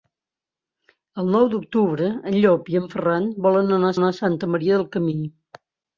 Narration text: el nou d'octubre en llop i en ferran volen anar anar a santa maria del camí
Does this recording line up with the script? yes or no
yes